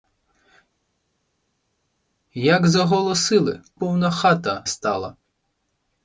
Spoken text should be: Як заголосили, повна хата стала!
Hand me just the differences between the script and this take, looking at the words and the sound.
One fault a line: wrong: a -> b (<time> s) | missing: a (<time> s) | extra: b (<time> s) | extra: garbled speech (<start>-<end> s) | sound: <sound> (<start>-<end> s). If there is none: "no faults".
no faults